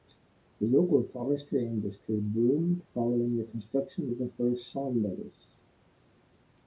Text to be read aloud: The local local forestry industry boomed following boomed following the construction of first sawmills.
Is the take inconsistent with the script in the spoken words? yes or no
yes